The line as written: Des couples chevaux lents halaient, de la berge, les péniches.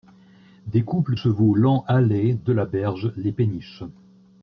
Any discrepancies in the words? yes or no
no